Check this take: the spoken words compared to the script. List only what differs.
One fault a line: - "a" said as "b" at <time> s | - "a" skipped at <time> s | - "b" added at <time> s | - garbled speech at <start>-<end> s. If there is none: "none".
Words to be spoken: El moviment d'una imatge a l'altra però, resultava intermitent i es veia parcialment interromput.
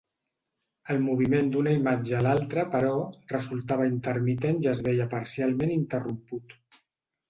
none